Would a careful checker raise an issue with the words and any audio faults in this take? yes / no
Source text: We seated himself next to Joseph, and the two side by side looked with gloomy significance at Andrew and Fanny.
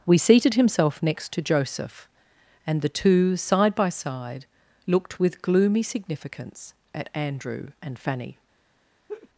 yes